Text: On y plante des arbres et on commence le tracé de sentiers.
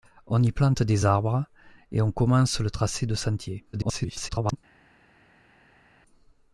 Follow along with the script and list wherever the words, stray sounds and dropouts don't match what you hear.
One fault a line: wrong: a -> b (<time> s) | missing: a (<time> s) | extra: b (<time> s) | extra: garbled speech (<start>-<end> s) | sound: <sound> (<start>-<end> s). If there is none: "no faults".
extra: garbled speech (3.7-4.6 s)